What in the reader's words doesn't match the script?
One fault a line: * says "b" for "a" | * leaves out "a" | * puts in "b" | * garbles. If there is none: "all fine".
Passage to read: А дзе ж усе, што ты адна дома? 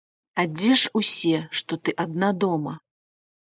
all fine